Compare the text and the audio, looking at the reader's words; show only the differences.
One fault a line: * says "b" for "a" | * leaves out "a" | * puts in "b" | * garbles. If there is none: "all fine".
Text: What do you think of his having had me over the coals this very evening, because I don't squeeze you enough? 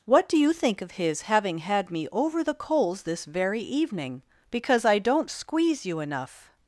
all fine